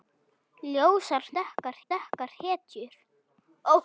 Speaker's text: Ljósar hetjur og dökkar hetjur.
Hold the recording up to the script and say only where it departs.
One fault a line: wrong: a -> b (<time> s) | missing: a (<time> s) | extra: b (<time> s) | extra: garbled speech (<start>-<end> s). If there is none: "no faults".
wrong: hetjur -> dökkar (1.4 s)